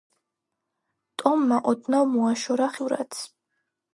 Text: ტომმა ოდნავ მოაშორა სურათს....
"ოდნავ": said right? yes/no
yes